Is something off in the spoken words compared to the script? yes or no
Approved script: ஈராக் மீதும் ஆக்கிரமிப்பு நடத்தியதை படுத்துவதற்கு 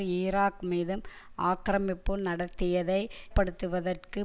no